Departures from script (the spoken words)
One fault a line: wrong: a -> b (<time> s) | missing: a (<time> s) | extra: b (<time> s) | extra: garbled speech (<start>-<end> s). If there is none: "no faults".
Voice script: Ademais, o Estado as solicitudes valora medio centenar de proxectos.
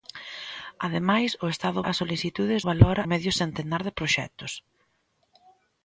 no faults